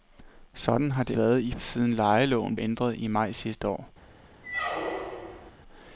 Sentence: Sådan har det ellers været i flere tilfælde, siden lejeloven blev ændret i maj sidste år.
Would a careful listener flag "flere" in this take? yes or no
yes